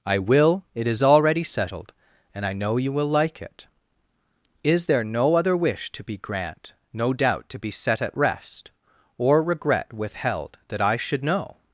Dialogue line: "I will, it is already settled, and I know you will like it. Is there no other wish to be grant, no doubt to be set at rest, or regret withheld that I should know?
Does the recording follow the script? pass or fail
pass